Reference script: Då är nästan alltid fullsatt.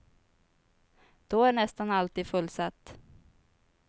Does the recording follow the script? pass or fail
pass